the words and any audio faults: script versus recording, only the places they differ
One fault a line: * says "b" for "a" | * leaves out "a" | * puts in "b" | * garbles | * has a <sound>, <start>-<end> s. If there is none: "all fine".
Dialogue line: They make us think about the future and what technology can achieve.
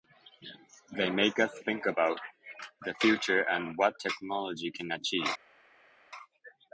all fine